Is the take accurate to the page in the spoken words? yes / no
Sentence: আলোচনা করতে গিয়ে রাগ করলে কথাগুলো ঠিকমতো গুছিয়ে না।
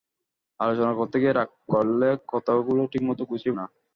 yes